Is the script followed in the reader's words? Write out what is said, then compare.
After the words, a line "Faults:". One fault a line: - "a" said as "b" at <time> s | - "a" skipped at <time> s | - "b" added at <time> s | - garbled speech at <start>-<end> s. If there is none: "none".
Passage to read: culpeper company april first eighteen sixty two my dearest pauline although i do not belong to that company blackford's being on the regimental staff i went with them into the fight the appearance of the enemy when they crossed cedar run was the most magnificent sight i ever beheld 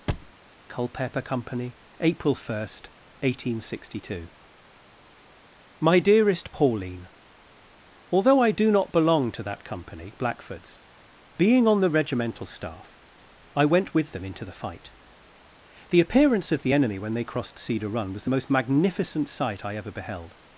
culpeper company april first eighteen sixty two my dearest pauline although i do not belong to that company blackford's being on the regimental staff i went with them into the fight the appearance of the enemy when they crossed cedar run was the most magnificent sight i ever beheld
Faults:
none